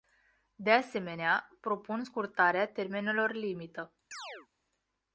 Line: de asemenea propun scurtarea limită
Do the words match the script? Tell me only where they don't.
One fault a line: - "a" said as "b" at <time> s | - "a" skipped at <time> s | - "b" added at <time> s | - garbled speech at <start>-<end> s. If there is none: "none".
- "termenelor" added at 2.6 s